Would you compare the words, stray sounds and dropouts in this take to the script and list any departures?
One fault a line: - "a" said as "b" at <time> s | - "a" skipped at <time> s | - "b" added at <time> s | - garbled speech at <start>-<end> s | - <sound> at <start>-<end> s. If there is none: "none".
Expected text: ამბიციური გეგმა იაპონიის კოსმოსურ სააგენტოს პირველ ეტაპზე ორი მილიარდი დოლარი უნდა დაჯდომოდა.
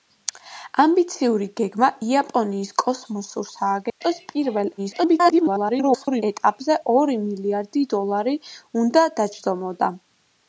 - dropout at 3.9-4.0 s
- garbled speech at 4.8-6.2 s